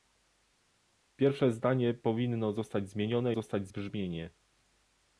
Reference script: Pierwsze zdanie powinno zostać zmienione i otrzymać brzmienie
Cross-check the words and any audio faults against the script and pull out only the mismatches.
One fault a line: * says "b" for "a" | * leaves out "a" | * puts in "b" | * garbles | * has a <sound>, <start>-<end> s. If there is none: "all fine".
* says "zostać" for "otrzymać"